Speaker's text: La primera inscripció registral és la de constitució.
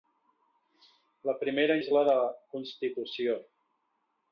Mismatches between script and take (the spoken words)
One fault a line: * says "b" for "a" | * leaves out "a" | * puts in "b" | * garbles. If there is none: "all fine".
* leaves out "inscripció registral"